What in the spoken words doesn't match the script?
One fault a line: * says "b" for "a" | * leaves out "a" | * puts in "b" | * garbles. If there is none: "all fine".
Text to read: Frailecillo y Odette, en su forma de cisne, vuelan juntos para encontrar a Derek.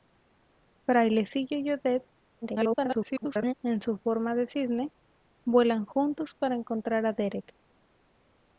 * garbles